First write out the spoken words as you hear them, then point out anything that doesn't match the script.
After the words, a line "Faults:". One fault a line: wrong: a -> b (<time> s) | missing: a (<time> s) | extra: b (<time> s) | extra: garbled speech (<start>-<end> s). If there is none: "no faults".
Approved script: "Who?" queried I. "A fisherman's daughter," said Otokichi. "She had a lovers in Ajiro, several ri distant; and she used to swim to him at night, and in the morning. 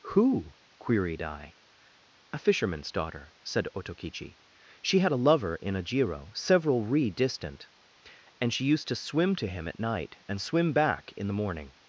"Who?" queried I. "A fisherman's daughter," said Otokichi. "She had a lover in Ajiro, several ri distant; and she used to swim to him at night, and swim back in the morning.
Faults:
wrong: lovers -> lover (5.2 s)
extra: swim back (10.4 s)